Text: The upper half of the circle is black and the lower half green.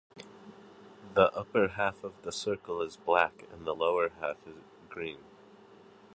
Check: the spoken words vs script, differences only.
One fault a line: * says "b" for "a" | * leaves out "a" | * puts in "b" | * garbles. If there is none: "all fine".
all fine